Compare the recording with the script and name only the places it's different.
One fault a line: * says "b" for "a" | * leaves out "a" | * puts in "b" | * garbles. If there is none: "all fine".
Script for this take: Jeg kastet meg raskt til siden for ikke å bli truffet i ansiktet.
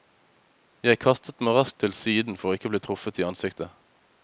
all fine